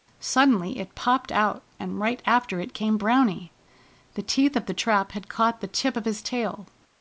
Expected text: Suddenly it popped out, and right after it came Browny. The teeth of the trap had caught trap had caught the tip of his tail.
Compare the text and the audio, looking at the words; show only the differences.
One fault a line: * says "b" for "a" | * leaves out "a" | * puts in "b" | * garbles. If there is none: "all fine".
* leaves out "trap had caught"